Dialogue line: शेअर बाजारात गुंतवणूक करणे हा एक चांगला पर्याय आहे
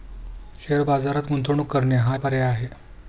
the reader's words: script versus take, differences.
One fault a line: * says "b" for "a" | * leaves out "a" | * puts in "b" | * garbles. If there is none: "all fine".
* leaves out "एक चांगला"